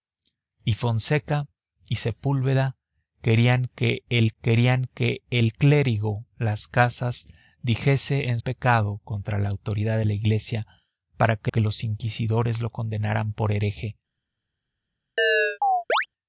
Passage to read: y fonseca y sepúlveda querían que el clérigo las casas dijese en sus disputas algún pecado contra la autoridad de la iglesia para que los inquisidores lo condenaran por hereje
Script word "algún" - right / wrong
wrong